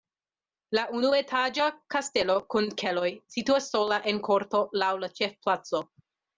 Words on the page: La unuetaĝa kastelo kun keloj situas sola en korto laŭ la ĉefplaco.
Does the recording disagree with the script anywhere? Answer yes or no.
no